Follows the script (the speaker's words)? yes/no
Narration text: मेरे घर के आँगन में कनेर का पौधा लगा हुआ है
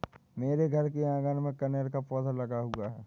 yes